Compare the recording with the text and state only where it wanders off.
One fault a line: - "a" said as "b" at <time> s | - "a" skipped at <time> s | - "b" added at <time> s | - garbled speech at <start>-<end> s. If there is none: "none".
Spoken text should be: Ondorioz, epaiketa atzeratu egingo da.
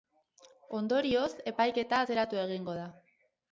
none